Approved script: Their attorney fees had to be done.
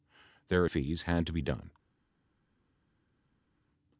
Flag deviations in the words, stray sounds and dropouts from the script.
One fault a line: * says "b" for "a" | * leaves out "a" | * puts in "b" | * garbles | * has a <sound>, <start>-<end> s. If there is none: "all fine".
* leaves out "attorney"